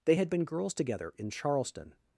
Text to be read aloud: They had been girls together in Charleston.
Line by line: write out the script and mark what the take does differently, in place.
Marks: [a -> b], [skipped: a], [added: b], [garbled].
They had been girls together in Charleston.